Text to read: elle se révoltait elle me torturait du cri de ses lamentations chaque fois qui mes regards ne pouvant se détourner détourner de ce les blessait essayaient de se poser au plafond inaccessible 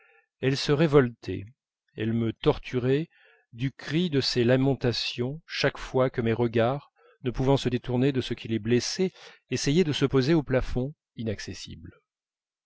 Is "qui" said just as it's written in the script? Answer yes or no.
no